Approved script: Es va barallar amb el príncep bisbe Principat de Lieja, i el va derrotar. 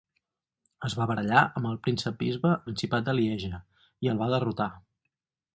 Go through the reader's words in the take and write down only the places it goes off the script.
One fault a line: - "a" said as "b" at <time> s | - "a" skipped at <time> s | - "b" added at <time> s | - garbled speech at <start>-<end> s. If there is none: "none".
none